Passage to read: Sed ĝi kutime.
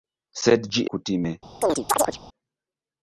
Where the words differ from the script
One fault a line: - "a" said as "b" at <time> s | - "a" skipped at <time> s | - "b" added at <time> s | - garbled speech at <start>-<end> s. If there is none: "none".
none